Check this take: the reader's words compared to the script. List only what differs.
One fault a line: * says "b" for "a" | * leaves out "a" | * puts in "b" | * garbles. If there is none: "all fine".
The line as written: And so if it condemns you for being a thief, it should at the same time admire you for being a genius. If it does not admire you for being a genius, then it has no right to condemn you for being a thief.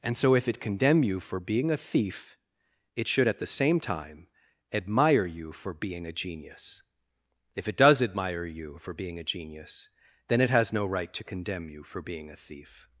* says "condemn" for "condemns"
* leaves out "not"